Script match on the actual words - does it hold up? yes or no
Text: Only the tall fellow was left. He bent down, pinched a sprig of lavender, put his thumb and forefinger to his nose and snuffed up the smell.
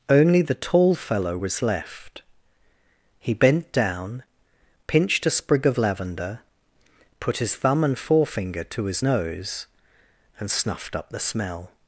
yes